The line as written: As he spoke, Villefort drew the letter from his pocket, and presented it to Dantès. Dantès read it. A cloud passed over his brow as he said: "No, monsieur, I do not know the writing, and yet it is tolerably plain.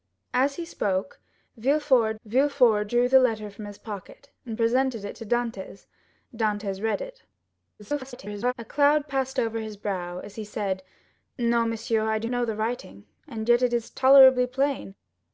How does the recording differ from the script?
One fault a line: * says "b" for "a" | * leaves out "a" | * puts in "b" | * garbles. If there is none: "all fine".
* puts in "Villefort"
* garbles
* leaves out "not"